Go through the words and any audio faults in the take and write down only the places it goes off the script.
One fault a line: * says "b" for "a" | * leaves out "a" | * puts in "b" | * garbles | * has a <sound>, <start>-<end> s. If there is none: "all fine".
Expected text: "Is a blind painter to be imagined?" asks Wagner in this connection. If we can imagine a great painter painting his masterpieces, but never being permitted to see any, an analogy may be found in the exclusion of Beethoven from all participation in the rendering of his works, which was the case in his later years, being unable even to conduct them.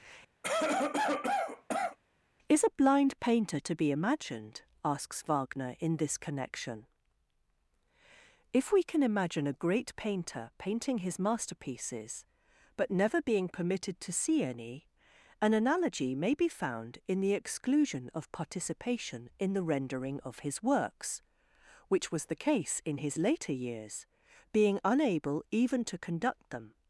* has a cough, 0.4-2.0 s
* leaves out "Beethoven from all"